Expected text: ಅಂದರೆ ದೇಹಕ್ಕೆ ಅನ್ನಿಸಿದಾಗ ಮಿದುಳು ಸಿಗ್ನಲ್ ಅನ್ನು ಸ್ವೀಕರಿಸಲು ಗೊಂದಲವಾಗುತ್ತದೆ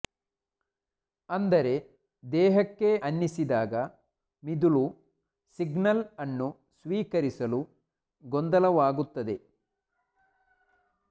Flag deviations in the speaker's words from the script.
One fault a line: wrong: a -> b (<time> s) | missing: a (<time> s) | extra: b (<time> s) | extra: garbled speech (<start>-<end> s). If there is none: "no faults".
no faults